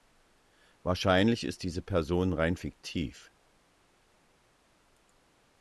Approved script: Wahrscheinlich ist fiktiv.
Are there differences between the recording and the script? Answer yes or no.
yes